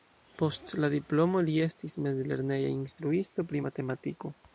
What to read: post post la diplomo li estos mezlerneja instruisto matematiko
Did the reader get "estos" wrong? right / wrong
wrong